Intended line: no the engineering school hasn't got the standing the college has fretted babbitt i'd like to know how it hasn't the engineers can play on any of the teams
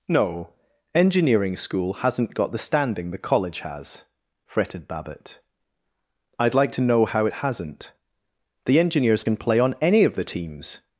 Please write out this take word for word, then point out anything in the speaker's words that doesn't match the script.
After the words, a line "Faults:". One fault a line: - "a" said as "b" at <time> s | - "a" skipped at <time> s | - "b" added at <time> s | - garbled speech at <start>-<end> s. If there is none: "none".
no engineering school hasn't got the standing the college has fretted babbitt i'd like to know how it hasn't the engineers can play on any of the teams
Faults:
- "the" skipped at 0.5 s